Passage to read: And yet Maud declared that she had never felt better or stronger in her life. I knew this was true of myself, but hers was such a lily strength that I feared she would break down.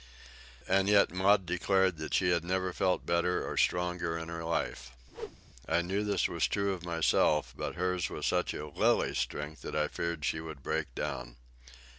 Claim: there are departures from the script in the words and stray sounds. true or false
true